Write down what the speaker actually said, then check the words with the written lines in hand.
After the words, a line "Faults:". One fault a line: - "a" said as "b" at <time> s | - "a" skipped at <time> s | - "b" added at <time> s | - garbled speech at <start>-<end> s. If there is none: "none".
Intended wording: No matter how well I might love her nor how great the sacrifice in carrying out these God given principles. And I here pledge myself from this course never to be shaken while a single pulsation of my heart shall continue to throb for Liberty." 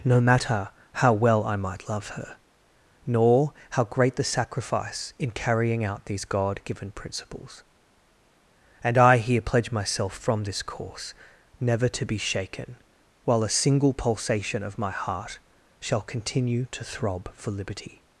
No matter how well I might love her nor how great the sacrifice in carrying out these God given principles. And I here pledge myself from this course never to be shaken while a single pulsation of my heart shall continue to throb for Liberty."
Faults:
none